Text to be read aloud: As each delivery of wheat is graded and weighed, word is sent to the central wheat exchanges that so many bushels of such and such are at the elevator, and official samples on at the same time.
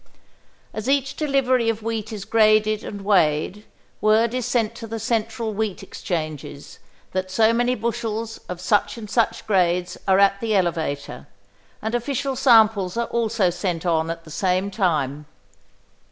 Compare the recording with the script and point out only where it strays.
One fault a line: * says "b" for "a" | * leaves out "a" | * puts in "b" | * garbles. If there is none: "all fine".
* puts in "grades"
* puts in "are also sent"